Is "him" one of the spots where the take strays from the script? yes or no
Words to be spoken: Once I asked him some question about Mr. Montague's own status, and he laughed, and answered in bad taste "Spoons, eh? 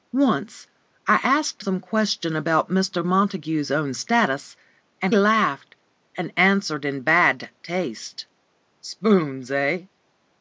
yes